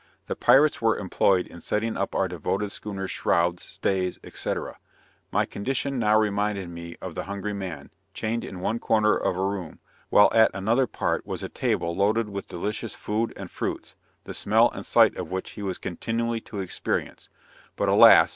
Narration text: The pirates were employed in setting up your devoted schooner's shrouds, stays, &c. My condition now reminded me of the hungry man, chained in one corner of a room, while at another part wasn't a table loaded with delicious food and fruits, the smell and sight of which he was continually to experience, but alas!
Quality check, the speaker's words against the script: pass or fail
fail